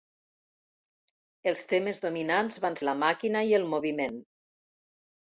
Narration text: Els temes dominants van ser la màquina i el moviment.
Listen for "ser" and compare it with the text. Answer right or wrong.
wrong